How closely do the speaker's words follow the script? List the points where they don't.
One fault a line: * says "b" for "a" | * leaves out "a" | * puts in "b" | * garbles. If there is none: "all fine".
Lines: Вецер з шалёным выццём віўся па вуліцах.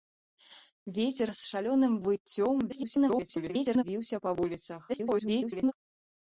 * garbles
* garbles